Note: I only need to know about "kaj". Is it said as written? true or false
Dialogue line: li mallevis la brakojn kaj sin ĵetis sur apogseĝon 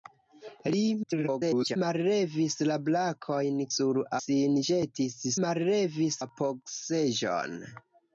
false